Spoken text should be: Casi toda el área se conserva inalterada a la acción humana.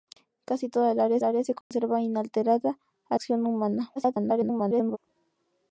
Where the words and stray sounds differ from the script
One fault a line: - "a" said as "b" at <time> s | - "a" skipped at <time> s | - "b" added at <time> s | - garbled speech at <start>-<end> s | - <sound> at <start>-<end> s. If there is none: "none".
- "área" added at 1.2 s
- dropout at 1.6-1.7 s
- "la" skipped at 3.2 s
- garbled speech at 4.0-5.0 s